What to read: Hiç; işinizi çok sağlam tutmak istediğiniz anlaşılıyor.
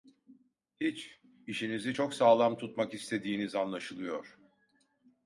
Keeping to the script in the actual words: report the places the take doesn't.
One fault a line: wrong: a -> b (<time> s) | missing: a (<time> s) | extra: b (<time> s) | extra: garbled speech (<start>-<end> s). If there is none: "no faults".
no faults